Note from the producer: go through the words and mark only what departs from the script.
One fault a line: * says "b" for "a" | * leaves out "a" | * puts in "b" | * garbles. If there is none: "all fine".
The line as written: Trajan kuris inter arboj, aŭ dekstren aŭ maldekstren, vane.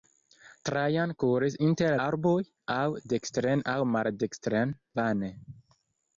all fine